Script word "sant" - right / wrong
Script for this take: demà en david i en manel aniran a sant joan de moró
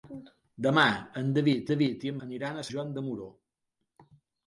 wrong